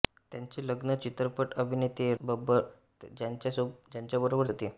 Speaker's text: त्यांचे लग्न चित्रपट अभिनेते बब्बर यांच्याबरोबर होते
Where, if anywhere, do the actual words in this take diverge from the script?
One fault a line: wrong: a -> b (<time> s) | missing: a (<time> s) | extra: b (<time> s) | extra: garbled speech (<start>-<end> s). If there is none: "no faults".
no faults